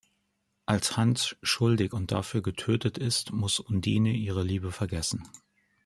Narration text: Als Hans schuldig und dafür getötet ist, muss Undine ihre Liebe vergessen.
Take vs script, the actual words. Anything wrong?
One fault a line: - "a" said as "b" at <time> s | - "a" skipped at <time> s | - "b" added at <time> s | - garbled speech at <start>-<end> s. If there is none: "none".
none